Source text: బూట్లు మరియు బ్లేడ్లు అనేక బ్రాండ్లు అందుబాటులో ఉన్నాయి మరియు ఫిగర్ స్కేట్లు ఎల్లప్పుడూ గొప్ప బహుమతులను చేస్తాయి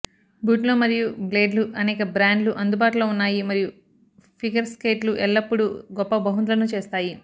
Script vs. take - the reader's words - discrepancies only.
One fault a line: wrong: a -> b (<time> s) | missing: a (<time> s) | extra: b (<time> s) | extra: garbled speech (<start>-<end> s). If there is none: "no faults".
no faults